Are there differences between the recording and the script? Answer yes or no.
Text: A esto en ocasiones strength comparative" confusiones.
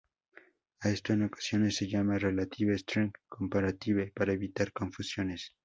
yes